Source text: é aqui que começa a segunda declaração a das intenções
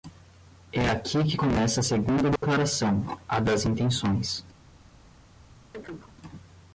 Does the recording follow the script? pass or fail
pass